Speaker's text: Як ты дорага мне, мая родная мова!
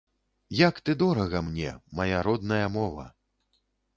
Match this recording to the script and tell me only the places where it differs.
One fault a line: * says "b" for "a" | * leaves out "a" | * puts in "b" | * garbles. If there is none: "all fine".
all fine